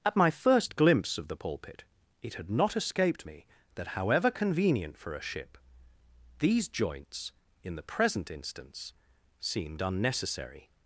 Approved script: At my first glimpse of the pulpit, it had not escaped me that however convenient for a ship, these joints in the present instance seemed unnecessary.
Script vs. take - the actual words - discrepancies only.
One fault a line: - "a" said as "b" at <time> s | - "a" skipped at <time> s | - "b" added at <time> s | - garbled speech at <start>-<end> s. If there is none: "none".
none